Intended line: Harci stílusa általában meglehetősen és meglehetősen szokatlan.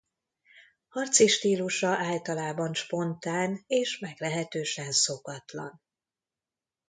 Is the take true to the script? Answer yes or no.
no